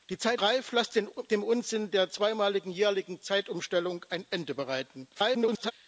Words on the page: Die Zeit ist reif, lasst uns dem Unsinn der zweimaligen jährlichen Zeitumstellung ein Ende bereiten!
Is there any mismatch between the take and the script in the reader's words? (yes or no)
yes